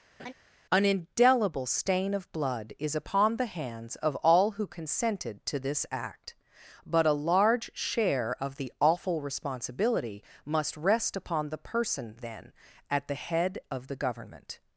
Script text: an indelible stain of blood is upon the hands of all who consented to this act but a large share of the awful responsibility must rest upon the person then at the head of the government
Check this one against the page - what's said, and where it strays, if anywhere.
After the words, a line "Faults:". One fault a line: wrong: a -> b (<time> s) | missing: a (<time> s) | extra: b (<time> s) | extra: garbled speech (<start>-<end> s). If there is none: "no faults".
an indelible stain of blood is upon the hands of all who consented to this act but a large share of the awful responsibility must rest upon the person then at the head of the government
Faults:
no faults